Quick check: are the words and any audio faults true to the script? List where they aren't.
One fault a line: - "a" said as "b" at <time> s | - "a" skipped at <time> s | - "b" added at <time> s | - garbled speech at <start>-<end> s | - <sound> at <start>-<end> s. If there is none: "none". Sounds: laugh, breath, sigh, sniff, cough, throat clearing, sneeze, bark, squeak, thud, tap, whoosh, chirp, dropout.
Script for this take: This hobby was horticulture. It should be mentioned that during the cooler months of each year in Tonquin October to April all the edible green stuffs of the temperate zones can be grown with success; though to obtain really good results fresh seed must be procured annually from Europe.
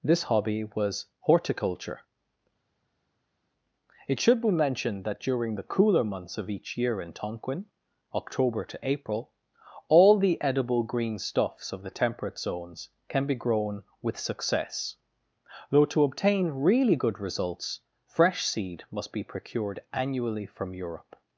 none